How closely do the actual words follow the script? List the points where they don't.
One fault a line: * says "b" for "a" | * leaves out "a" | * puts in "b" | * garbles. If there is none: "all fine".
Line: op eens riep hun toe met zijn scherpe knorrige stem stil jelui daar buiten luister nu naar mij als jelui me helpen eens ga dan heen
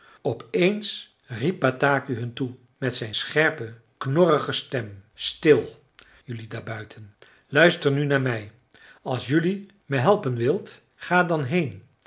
* puts in "bataki"
* says "wilt" for "eens"